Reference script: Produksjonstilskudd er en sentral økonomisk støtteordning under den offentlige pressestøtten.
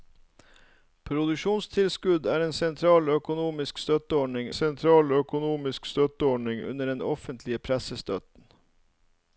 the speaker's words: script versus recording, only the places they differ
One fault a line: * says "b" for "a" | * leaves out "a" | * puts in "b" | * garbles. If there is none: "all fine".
* puts in "sentral økonomisk støtteordning"